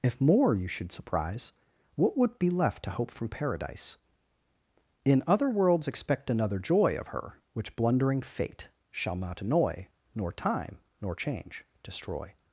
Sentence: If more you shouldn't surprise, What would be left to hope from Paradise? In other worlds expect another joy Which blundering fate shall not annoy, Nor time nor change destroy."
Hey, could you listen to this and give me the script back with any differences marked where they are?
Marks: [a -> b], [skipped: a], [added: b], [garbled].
If more you [shouldn't -> should] surprise, What would be left to hope from Paradise? In other worlds expect another joy [added: Of Her] Which blundering fate shall not annoy, Nor time nor change destroy."